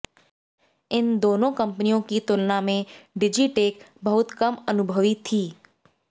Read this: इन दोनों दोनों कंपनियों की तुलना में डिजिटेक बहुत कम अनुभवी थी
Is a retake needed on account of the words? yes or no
yes